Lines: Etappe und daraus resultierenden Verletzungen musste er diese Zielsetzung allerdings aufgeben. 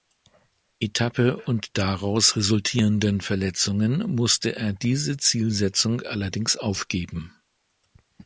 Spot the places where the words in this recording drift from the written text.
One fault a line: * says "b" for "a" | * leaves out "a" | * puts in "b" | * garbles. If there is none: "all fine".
all fine